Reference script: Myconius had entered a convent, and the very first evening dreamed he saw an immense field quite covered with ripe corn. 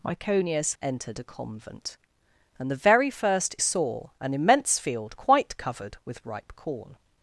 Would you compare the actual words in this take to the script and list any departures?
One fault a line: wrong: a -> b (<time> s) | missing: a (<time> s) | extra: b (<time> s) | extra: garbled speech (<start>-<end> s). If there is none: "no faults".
missing: had (0.8 s)
missing: evening dreamed he (3.6 s)